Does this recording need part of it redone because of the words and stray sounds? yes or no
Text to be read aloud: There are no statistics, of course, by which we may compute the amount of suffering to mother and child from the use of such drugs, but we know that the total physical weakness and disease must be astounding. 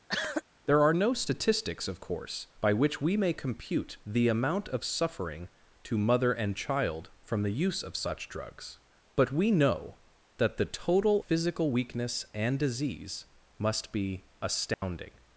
yes